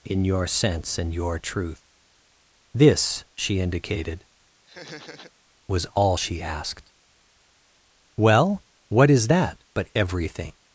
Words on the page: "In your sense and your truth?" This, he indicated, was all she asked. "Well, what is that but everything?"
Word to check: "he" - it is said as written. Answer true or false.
false